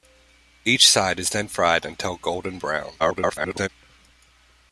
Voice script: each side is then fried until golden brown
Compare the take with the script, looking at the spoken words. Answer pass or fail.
fail